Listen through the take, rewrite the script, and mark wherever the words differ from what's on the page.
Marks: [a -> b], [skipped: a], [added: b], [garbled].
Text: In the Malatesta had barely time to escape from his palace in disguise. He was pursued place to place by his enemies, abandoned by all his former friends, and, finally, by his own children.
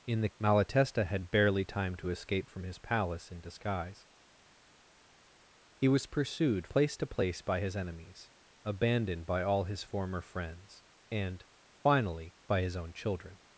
In the Malatesta had barely time to escape from his palace in disguise. He was pursued place to place by his enemies, abandoned by all his former friends, and, finally, by his own children.